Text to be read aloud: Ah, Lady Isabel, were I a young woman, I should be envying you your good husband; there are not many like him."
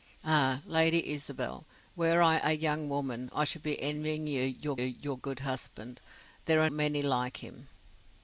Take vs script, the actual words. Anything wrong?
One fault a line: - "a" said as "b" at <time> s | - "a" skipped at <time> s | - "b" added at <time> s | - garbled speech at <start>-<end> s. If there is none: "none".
- "your" added at 4.8 s
- "not" skipped at 6.7 s